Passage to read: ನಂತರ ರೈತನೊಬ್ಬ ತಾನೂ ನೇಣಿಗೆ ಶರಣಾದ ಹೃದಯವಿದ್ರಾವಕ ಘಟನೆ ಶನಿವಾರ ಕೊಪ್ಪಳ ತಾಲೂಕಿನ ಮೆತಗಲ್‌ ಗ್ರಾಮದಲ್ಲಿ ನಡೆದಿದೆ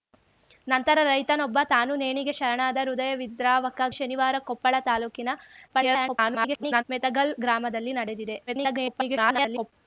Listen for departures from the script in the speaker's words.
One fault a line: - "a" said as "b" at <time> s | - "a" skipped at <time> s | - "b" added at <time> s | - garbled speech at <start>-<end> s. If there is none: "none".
- "ಘಟನೆ" skipped at 3.8 s
- garbled speech at 5.7-6.8 s
- garbled speech at 8.5-9.7 s